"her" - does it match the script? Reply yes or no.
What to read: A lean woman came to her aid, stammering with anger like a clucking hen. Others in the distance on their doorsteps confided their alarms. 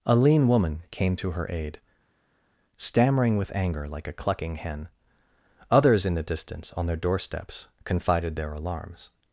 yes